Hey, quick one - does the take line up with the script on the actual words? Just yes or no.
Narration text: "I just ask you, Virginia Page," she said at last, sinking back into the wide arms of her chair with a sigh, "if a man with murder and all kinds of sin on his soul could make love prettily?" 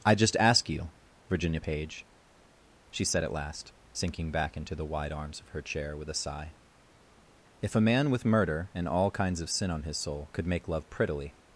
yes